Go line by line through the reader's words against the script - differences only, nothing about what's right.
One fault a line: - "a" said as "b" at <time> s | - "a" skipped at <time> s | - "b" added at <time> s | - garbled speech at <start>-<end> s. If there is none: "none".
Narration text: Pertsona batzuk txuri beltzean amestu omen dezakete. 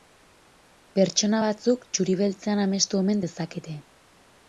none